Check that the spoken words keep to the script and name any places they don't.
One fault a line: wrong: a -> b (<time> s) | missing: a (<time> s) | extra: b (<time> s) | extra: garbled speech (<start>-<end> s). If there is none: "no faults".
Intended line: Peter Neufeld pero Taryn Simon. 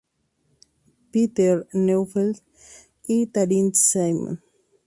wrong: pero -> y (3.0 s)